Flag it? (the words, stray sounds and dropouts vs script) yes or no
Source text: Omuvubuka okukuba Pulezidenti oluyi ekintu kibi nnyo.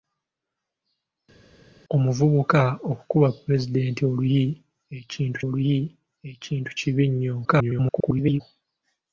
yes